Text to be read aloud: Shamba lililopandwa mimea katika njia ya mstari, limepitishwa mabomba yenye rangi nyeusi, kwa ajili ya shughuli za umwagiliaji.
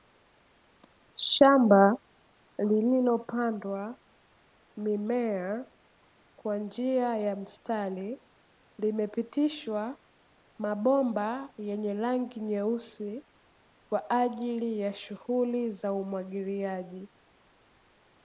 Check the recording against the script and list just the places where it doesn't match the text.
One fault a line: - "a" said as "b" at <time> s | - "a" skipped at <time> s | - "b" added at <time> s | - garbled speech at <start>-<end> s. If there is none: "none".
- "katika" said as "kwa" at 6.3 s